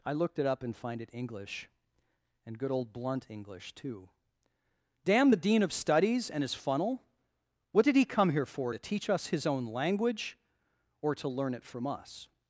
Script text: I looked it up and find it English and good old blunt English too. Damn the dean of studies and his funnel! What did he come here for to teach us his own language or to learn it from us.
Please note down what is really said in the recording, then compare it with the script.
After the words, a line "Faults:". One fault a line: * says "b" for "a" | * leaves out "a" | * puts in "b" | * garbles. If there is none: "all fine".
I looked it up and find it English and good old blunt English too. Damn the dean of studies and his funnel! What did he come here for to teach us his own language or to learn it from us.
Faults:
all fine